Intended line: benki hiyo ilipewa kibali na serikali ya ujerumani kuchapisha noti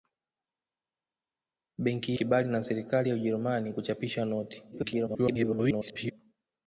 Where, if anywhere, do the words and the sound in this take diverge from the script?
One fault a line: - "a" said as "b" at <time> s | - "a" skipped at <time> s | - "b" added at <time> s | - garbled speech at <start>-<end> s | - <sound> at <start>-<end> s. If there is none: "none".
- "hiyo ilipewa" skipped at 2.1 s
- garbled speech at 4.7-6.1 s